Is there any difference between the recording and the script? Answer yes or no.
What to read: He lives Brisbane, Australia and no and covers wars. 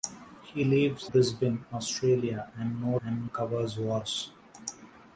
no